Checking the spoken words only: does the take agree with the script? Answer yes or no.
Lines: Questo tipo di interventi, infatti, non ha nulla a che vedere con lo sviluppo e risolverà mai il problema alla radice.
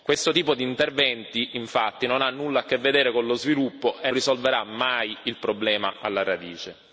yes